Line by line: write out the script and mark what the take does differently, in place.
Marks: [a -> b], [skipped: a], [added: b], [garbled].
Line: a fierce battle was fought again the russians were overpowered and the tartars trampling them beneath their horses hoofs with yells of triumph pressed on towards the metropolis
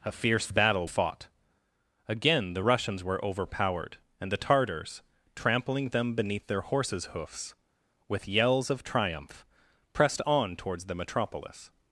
a fierce battle [skipped: was] fought again the russians were overpowered and the tartars trampling them beneath their horses hoofs with yells of triumph pressed on towards the metropolis